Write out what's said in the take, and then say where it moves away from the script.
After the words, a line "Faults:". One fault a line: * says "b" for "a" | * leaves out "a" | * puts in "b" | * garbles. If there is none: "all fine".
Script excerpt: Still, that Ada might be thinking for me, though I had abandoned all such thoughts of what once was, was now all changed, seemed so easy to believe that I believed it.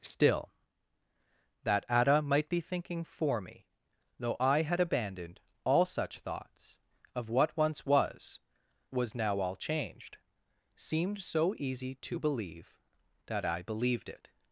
Still, that Ada might be thinking for me, though I had abandoned all such thoughts of what once was, was now all changed, seemed so easy to believe that I believed it.
Faults:
all fine